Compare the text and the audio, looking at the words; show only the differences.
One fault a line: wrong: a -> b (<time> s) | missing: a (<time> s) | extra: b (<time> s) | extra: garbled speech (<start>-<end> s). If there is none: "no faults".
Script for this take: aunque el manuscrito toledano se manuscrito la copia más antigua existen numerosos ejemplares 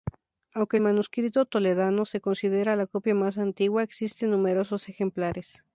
wrong: manuscrito -> considera (2.2 s)